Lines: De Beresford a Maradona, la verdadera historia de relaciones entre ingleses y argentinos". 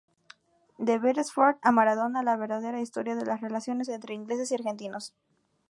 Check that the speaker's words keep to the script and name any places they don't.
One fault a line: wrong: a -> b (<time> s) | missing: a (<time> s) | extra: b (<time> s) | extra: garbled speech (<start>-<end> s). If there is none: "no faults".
extra: las (3.3 s)